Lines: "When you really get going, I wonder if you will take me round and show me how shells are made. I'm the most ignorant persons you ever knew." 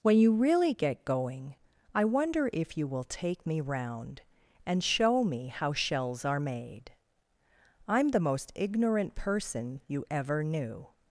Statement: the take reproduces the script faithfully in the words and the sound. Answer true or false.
false